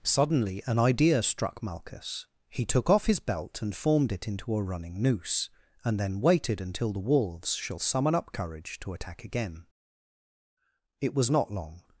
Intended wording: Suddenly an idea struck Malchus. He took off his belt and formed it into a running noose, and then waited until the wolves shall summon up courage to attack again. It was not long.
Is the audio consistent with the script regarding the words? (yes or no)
yes